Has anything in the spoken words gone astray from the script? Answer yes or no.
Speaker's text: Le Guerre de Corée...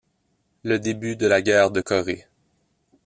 yes